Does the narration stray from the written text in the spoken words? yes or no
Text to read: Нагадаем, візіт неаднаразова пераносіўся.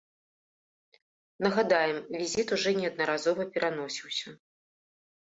yes